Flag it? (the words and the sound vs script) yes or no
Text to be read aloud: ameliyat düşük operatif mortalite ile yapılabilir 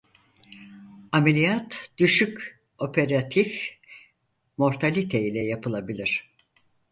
no